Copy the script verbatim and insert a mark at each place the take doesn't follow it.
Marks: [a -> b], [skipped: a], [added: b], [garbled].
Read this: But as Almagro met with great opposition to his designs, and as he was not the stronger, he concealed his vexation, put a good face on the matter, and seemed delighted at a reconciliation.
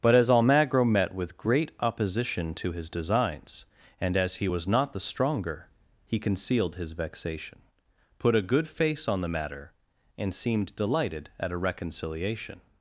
But as Almagro met with great opposition to his designs, and as he was not the stronger, he concealed his vexation, put a good face on the matter, and seemed delighted at a reconciliation.